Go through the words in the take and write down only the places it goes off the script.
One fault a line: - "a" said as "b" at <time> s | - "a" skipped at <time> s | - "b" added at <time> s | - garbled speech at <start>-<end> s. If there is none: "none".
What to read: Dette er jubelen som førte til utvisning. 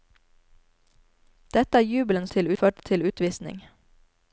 - "som" said as "til" at 2.3 s